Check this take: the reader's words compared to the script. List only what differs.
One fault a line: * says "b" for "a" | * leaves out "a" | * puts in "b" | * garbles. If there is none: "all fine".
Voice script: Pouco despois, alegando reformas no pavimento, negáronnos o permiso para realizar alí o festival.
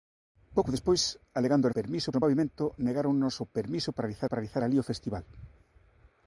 * says "permiso" for "reformas"
* puts in "para realizar"